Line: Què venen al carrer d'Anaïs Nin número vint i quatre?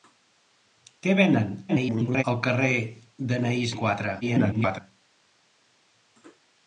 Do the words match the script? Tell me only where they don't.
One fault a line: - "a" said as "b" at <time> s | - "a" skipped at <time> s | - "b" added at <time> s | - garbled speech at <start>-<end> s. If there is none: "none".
- garbled speech at 1.7-2.2 s
- "Nin número vint" skipped at 3.7 s
- garbled speech at 4.2-4.8 s